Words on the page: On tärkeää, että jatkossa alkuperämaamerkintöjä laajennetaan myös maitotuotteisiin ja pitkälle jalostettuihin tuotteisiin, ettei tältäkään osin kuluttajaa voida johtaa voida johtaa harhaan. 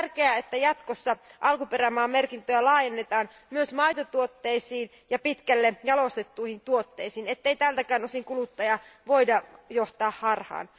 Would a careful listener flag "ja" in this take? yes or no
no